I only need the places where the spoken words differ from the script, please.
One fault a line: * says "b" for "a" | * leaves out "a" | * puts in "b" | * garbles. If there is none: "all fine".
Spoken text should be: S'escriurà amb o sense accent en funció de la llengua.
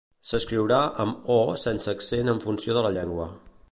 all fine